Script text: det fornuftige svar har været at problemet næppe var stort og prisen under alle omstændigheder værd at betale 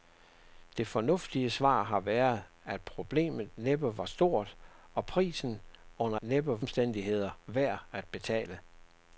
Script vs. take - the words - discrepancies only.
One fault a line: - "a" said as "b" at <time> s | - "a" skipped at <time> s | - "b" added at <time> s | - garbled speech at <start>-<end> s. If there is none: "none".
- "alle" said as "næppe" at 6.2 s